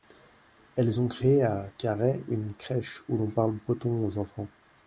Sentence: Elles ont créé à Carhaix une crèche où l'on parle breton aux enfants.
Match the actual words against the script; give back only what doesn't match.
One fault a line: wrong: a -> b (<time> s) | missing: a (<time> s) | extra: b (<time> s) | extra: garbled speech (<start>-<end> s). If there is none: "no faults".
no faults